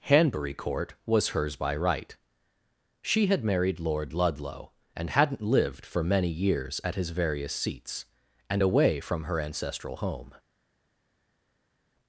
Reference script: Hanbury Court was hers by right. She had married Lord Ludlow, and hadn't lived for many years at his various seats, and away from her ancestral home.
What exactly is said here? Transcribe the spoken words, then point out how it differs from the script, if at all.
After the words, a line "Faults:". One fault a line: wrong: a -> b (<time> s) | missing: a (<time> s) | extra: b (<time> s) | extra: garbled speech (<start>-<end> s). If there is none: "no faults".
Hanbury Court was hers by right. She had married Lord Ludlow, and hadn't lived for many years at his various seats, and away from her ancestral home.
Faults:
no faults